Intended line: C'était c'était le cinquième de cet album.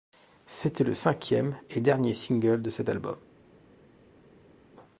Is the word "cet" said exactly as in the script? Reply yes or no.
yes